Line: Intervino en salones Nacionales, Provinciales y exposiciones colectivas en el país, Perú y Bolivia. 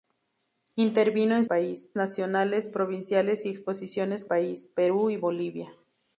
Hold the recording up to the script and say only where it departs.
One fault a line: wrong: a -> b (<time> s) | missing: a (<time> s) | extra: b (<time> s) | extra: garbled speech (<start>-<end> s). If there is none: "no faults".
wrong: salones -> país (1.4 s)
missing: colectivas en el (4.3 s)